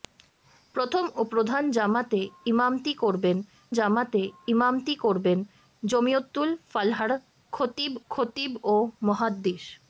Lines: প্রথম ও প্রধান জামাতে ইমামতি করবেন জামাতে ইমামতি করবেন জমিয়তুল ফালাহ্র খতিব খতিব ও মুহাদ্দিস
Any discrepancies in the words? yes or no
no